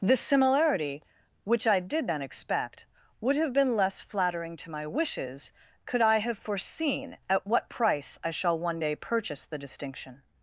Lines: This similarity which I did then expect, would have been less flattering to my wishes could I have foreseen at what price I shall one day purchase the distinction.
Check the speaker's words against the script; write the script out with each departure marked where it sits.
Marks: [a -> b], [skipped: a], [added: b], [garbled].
This similarity which I did then expect, would have been less flattering to my wishes could I have foreseen at what price I shall one day purchase the distinction.